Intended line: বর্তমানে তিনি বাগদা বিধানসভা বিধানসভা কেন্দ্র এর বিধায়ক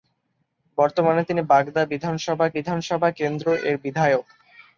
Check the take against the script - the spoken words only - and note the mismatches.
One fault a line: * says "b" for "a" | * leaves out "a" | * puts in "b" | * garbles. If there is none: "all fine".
all fine